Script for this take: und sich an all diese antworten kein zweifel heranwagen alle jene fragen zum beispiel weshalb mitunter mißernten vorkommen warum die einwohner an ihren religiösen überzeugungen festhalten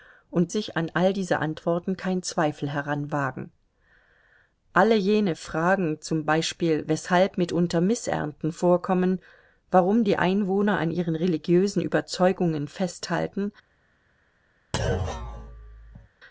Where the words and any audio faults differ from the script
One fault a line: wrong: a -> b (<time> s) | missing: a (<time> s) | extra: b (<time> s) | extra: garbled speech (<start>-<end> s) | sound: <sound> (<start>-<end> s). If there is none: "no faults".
sound: thud (14.7-16.1 s)